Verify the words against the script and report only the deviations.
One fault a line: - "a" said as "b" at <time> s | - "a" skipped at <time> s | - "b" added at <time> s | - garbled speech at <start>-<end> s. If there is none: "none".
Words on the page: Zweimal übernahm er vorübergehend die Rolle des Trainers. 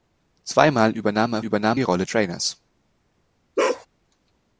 - "vorübergehend" said as "übernahm" at 1.4 s
- "des" skipped at 2.1 s